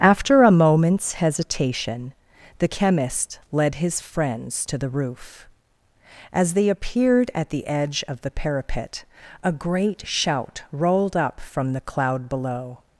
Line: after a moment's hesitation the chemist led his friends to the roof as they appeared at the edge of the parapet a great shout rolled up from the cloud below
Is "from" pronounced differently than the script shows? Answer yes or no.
no